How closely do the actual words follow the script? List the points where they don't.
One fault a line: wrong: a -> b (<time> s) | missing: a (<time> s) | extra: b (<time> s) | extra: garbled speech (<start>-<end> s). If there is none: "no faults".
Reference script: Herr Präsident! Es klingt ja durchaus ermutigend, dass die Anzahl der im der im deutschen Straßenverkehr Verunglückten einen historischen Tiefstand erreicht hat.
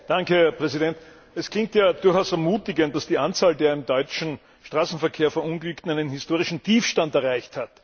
missing: der im (3.8 s)